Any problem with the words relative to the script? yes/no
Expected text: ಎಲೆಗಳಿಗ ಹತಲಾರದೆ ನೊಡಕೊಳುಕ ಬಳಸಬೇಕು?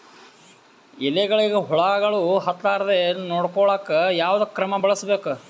yes